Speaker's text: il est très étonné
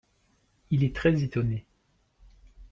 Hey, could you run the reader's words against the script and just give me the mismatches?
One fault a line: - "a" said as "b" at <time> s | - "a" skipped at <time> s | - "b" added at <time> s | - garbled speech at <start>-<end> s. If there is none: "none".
none